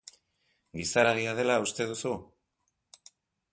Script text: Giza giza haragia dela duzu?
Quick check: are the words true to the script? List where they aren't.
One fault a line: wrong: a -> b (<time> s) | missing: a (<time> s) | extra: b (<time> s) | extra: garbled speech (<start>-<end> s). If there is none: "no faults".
missing: giza (1.0 s)
extra: uste (1.6 s)